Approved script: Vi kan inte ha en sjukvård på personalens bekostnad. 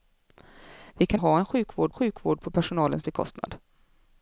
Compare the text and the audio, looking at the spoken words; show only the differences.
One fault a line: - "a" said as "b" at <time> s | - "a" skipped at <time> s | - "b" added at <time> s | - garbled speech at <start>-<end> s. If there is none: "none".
- "inte" skipped at 1.2 s
- "sjukvård" added at 1.9 s